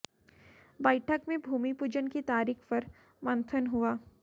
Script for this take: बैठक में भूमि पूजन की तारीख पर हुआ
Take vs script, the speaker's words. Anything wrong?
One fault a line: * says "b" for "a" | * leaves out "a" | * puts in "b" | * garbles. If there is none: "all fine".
* puts in "मंथन"